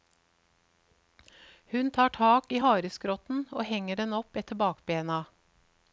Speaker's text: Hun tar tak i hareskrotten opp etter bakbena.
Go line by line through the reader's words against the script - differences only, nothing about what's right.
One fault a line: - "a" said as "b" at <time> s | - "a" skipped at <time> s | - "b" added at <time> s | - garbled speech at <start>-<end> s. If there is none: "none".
- "og henger den" added at 3.5 s